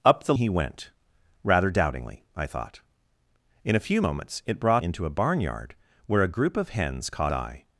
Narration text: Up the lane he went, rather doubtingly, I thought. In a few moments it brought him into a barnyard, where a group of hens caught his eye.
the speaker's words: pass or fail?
fail